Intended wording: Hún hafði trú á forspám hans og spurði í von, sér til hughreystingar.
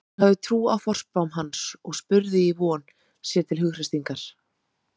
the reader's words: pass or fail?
pass